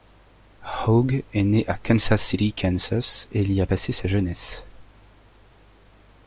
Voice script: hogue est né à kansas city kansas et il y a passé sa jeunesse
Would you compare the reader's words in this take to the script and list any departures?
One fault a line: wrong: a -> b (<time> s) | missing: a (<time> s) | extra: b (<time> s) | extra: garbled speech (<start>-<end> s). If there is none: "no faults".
no faults